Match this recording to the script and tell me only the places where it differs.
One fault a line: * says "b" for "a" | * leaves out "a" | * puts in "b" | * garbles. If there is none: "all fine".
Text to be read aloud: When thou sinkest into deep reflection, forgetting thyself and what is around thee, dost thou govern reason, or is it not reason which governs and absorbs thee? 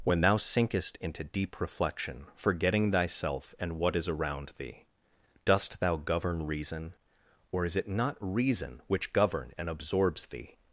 * says "govern" for "governs"